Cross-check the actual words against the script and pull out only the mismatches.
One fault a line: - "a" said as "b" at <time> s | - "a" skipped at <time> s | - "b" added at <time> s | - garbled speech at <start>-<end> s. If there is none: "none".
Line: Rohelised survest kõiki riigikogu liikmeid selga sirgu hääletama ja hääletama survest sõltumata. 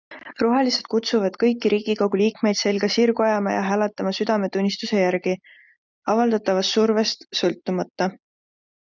- "survest" said as "kutsuvad" at 0.9 s
- "hääletama" said as "ajama" at 3.2 s
- "südametunnistuse järgi avaldatavast" added at 4.2 s